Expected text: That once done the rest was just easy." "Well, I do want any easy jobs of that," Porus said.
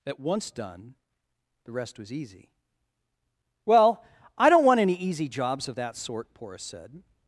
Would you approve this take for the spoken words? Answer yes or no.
no